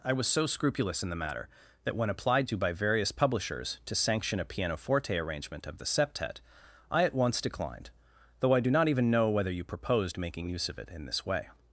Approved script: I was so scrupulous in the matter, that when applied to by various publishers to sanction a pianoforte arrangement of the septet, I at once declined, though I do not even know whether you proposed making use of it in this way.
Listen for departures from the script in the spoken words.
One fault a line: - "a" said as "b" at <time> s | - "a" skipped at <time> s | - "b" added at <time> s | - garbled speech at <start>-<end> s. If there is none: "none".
none